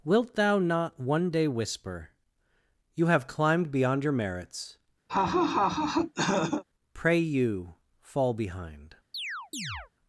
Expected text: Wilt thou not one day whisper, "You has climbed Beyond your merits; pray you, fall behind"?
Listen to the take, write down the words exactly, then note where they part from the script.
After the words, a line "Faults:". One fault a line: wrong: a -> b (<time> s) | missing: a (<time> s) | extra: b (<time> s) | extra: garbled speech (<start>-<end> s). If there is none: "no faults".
Wilt thou not one day whisper, "You have climbed Beyond your merits; pray you, fall behind"?
Faults:
wrong: has -> have (3.0 s)